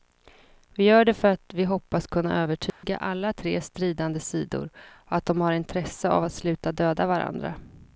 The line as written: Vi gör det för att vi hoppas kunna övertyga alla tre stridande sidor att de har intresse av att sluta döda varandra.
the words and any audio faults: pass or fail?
fail